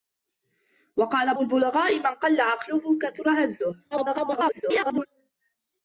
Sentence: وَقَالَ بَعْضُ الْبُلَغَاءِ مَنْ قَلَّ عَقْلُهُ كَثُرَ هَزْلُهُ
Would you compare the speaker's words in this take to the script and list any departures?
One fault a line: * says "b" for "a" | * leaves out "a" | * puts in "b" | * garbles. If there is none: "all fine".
* leaves out "بَعْضُ"
* garbles